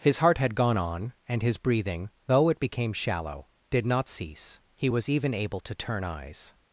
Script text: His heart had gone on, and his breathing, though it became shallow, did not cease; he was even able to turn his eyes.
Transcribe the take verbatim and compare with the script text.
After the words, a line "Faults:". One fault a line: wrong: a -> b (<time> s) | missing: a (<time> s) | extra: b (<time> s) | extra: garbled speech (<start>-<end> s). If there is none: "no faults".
His heart had gone on, and his breathing, though it became shallow, did not cease; he was even able to turn eyes.
Faults:
missing: his (6.0 s)